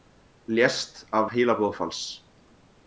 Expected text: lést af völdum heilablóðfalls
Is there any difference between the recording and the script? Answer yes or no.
yes